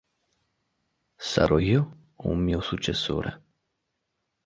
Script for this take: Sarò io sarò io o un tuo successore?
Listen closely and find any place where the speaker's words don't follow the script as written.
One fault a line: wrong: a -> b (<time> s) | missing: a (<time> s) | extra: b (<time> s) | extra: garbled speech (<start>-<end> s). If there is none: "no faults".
missing: sarò io (2.1 s)
wrong: tuo -> mio (2.4 s)